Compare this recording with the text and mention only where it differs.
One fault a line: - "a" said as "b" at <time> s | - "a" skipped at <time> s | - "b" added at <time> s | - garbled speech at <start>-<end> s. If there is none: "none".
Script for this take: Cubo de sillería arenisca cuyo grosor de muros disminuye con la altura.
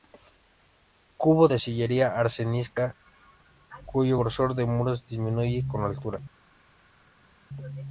none